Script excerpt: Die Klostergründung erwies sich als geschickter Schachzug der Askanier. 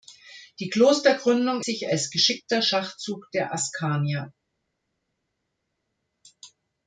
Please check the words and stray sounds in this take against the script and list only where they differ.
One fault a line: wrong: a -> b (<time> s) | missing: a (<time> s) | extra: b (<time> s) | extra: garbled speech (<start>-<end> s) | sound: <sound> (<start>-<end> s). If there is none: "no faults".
missing: erwies (1.6 s)